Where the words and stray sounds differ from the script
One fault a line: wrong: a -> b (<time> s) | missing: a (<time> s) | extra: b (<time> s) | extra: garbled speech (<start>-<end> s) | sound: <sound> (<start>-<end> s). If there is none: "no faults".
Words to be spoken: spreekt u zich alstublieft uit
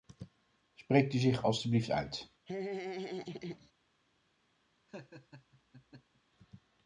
sound: laugh (2.5-3.7 s)
sound: laugh (4.9-6.2 s)